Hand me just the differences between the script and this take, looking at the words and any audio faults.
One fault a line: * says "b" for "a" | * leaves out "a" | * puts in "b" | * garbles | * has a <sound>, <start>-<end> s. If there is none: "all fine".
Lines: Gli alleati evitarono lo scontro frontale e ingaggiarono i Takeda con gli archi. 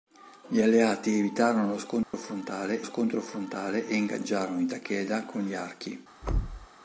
* has a dropout, 2.0-2.1 s
* puts in "scontro frontale"
* has a thud, 6.2-6.7 s